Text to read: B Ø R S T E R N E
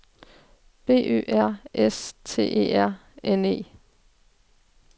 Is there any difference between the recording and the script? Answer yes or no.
no